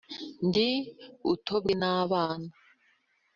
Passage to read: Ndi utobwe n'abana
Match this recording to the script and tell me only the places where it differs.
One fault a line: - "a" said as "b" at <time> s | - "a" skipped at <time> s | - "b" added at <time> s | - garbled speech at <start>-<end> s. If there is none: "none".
none